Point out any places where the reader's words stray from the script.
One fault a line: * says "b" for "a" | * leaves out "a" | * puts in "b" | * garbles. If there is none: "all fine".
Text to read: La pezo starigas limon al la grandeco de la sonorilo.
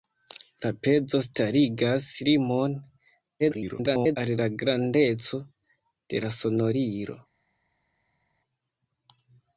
* garbles